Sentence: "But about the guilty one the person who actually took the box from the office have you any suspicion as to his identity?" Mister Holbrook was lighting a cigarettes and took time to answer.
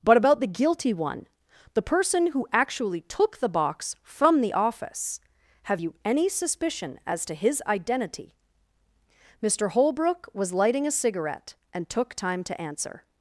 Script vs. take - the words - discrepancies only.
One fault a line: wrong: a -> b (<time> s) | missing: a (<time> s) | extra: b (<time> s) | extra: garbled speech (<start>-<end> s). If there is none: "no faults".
wrong: cigarettes -> cigarette (10.9 s)